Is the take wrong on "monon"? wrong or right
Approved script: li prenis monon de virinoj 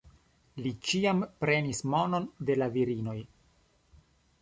right